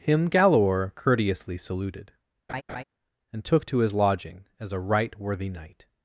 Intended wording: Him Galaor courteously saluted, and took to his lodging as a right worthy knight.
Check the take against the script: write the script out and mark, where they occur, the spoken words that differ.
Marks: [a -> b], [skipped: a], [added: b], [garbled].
Him Galaor courteously saluted, and took to his lodging as a right worthy knight.